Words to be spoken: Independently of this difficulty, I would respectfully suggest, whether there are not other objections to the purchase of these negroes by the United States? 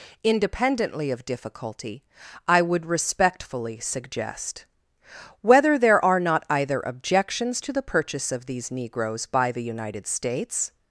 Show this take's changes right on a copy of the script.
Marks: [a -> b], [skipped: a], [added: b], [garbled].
Independently of [skipped: this] difficulty, I would respectfully suggest, whether there are not [other -> either] objections to the purchase of these negroes by the United States?